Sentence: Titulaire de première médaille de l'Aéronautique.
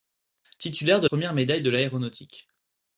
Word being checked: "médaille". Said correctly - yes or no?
yes